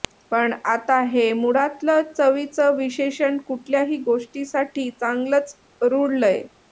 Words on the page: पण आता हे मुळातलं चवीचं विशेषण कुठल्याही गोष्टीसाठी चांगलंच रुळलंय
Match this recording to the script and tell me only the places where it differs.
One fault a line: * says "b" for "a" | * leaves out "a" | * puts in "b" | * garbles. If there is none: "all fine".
all fine